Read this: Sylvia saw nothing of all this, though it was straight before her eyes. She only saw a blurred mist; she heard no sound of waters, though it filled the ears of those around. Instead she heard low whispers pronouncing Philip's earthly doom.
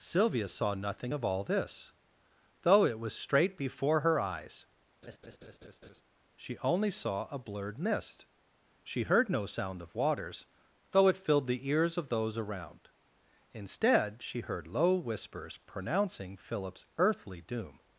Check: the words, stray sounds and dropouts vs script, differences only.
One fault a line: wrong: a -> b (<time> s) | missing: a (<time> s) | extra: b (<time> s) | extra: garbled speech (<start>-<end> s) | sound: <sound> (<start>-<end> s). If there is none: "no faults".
sound: laugh (5.0-6.0 s)